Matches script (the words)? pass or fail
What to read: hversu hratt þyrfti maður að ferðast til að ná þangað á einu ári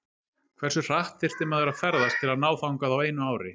pass